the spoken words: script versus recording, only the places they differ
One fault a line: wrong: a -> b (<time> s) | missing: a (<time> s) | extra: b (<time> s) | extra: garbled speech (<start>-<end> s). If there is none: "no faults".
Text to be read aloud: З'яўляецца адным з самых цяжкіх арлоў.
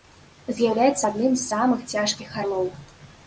no faults